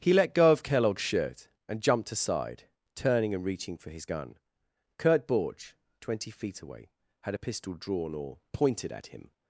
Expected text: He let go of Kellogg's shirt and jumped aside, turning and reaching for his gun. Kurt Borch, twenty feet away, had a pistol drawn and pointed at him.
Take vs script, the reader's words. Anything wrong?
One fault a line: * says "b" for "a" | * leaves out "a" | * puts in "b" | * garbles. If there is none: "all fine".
* says "or" for "and"